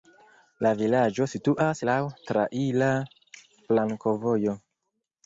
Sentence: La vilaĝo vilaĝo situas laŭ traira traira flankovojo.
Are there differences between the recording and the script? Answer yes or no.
yes